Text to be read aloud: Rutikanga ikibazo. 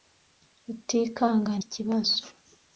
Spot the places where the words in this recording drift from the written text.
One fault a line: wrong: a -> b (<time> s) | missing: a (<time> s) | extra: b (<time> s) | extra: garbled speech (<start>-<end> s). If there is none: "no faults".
no faults